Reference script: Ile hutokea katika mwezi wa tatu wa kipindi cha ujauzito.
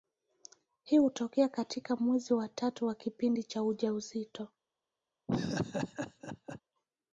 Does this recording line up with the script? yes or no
no